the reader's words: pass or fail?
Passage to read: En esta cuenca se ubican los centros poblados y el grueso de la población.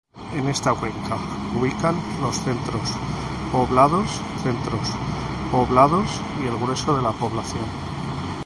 fail